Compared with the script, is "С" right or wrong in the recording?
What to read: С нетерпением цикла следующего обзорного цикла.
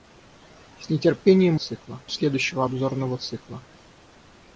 right